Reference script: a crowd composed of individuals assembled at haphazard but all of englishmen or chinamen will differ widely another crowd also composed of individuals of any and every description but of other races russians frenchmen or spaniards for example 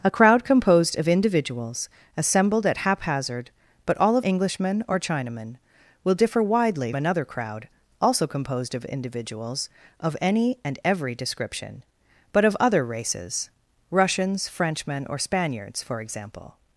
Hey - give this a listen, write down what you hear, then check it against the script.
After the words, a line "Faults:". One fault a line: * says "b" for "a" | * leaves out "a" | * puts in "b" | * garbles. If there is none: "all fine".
a crowd composed of individuals assembled at haphazard but all of englishmen or chinamen will differ widely another crowd also composed of individuals of any and every description but of other races russians frenchmen or spaniards for example
Faults:
all fine